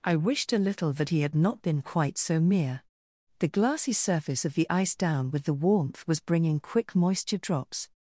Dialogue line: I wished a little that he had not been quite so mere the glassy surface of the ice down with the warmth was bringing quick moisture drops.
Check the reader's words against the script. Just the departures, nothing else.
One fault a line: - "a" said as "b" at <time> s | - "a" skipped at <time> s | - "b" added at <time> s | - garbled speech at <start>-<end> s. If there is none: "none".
none